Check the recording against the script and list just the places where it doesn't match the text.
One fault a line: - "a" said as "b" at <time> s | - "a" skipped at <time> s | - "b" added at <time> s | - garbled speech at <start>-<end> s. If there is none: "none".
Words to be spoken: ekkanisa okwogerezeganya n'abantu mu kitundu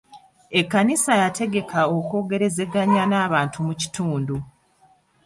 - "yategeka" added at 1.2 s